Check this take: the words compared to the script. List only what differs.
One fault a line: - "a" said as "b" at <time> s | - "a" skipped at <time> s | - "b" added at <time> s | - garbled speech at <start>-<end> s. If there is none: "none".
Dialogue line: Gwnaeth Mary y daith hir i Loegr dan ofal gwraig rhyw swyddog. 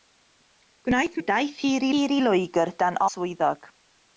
- "Mary" skipped at 1.2 s
- "hir" added at 1.9 s
- "ofal gwraig rhyw" skipped at 3.0 s